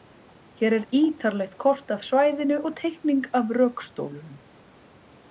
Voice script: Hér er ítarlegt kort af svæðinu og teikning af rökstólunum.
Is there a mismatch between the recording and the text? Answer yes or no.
no